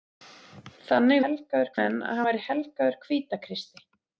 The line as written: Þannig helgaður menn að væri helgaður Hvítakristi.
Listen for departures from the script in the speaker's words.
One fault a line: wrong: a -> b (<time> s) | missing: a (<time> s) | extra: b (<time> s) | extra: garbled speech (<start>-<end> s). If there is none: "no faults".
no faults